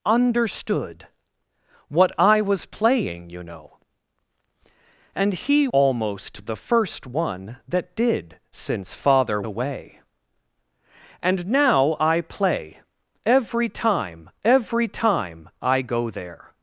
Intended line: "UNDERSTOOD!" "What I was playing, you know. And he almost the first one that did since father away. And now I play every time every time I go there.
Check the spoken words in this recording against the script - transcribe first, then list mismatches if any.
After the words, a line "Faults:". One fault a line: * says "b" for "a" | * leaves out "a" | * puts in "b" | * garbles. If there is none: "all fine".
"UNDERSTOOD!" "What I was playing, you know. And he almost the first one that did since father away. And now I play every time every time I go there.
Faults:
all fine